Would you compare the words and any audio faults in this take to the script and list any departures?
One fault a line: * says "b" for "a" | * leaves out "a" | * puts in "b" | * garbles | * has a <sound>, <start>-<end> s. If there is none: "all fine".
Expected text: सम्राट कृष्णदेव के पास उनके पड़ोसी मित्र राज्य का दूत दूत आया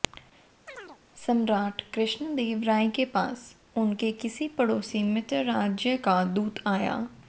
* has a chirp, 0.7-1.0 s
* puts in "राय"
* puts in "किसी"
* leaves out "दूत"